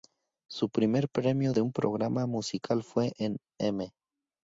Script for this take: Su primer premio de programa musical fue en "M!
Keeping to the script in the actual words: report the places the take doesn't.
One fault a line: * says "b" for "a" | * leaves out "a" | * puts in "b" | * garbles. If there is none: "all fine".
* puts in "un"